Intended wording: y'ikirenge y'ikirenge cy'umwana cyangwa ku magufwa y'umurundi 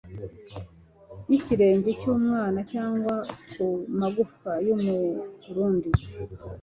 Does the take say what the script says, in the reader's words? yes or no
no